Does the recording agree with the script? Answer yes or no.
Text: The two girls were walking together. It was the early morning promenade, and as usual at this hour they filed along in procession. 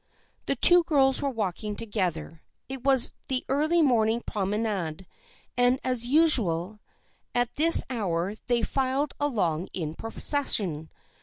yes